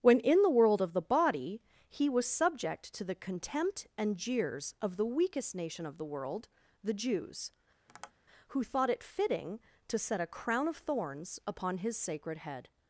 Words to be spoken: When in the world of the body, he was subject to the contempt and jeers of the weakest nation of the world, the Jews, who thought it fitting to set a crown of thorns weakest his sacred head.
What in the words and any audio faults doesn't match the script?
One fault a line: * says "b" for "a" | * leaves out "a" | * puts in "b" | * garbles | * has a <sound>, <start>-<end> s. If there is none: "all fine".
* has a tap, 7.9-8.1 s
* says "upon" for "weakest"